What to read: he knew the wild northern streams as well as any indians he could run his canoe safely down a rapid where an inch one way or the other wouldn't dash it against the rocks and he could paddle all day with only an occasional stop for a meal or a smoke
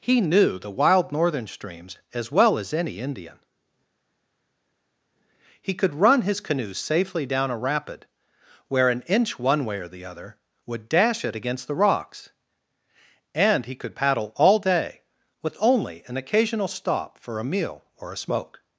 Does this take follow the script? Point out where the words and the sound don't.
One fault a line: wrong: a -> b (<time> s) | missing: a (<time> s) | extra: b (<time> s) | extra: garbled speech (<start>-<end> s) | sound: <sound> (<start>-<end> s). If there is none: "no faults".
wrong: indians -> indian (3.0 s)
wrong: wouldn't -> would (10.7 s)